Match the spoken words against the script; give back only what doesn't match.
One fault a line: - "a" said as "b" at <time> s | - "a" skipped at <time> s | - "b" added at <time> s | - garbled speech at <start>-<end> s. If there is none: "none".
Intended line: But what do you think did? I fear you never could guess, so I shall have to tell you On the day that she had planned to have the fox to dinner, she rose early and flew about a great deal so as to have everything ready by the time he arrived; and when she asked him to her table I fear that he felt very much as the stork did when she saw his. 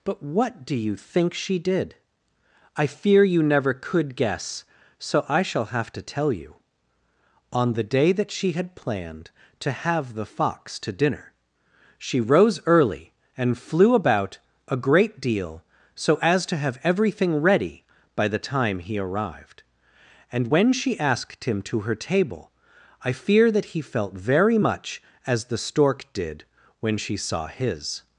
- "she" added at 1.3 s